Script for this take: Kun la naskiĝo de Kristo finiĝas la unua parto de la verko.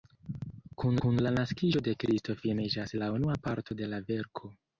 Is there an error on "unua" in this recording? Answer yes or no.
no